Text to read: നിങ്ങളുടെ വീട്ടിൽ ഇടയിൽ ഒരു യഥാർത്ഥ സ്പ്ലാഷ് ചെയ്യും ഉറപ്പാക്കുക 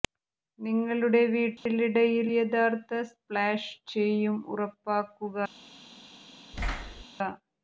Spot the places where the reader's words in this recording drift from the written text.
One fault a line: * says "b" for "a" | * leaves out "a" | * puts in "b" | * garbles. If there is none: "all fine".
* leaves out "ഒരു"